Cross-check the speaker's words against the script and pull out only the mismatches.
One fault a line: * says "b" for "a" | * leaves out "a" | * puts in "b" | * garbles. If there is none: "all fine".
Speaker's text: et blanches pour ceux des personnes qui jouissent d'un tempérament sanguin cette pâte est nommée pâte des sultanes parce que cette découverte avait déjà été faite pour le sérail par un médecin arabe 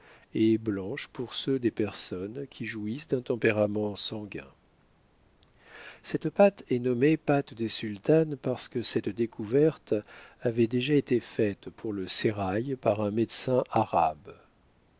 all fine